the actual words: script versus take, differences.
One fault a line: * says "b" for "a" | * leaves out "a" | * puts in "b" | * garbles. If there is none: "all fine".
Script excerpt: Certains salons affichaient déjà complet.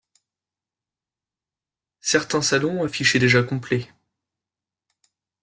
all fine